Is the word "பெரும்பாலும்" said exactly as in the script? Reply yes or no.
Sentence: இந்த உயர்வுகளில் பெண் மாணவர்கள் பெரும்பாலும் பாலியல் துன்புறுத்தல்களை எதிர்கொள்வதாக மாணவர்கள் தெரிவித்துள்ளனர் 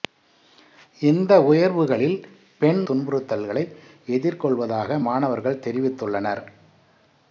no